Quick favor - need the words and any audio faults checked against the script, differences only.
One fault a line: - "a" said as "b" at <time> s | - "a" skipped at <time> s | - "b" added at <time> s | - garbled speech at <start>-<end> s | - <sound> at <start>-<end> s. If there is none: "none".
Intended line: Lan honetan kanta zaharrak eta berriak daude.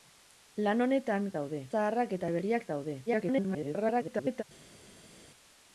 - "kanta" said as "daude" at 1.4 s
- garbled speech at 3.1-4.4 s